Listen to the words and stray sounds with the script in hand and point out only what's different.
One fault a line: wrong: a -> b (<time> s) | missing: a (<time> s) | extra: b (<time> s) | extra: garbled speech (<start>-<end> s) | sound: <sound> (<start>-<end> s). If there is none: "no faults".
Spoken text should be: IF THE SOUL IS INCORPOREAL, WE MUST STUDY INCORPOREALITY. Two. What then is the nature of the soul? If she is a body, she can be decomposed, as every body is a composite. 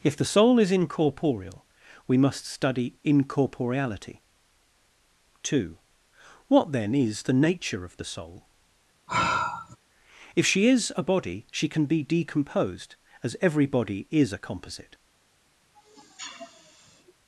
sound: sigh (9.1-9.8 s)
sound: sniff (15.7-17.1 s)